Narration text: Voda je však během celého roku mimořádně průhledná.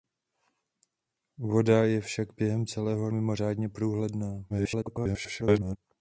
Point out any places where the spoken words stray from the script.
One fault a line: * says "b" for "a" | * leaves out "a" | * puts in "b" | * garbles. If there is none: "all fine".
* leaves out "roku"
* garbles